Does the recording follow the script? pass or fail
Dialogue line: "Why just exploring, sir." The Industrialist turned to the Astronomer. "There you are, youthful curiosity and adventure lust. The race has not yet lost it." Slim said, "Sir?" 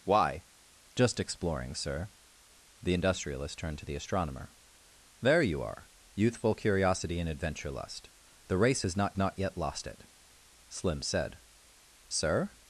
fail